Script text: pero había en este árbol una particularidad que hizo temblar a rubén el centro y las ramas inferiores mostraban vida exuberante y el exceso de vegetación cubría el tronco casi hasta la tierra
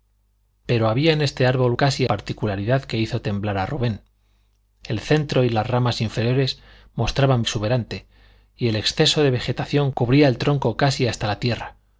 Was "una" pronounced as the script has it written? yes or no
no